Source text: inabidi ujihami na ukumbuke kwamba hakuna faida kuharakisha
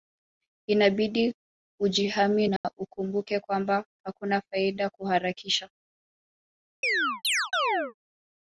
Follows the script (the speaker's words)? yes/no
yes